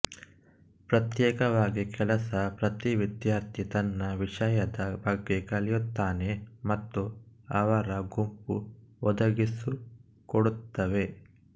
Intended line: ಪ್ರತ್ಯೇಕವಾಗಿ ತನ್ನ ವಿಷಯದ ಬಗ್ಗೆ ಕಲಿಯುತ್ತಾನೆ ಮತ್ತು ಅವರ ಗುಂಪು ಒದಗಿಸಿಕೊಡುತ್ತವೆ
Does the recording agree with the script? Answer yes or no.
no